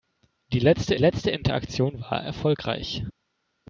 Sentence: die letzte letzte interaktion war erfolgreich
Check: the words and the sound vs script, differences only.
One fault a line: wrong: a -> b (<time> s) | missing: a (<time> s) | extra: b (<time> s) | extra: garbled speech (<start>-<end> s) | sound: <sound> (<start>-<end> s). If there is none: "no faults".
no faults